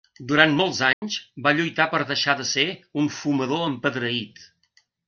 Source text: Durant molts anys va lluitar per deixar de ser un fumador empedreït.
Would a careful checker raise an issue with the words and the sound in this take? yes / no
yes